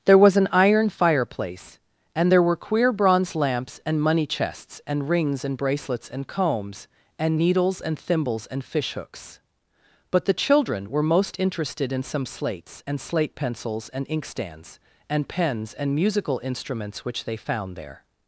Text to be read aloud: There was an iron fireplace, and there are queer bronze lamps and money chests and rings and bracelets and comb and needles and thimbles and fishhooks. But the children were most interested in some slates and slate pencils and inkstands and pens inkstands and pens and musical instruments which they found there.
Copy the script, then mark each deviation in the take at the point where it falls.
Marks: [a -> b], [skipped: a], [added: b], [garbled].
There was an iron fireplace, and there [are -> were] queer bronze lamps and money chests and rings and bracelets and [comb -> combs] and needles and thimbles and fishhooks. But the children were most interested in some slates and slate pencils and inkstands and pens [skipped: inkstands and pens] and musical instruments which they found there.